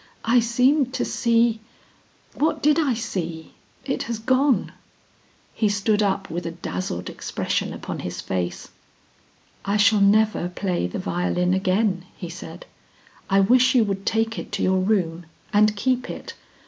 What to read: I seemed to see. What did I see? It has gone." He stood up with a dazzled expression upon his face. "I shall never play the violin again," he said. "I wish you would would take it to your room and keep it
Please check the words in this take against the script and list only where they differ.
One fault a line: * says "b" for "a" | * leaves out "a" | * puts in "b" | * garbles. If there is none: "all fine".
* leaves out "would"